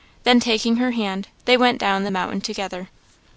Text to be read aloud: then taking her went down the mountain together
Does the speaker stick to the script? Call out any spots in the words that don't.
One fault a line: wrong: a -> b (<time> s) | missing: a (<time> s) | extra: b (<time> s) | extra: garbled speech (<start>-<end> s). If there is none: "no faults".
extra: hand they (0.9 s)